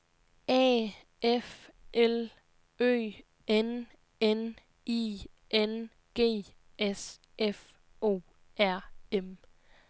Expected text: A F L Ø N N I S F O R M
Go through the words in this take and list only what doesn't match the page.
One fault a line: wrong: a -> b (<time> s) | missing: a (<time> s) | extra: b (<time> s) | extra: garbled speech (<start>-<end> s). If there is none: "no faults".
extra: N G (5.5 s)